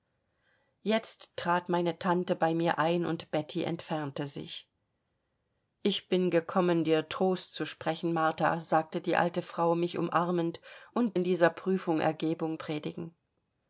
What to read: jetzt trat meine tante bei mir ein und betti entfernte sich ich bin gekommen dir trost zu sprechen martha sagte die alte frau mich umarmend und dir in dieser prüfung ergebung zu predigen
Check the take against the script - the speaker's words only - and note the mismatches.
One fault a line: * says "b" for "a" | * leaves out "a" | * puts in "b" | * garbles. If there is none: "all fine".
* leaves out "dir"
* leaves out "zu"